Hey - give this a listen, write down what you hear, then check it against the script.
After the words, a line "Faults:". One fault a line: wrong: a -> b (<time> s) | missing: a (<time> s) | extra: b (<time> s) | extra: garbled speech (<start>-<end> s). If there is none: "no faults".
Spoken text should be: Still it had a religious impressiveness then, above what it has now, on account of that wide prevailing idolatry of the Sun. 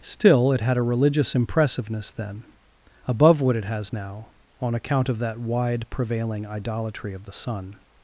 Still it had a religious impressiveness then, above what it has now, on account of that wide prevailing idolatry of the Sun.
Faults:
no faults